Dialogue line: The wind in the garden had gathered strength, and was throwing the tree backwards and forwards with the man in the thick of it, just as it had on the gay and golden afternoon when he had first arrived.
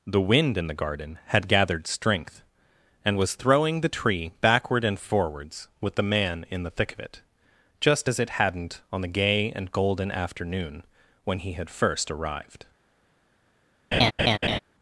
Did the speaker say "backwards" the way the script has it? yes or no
no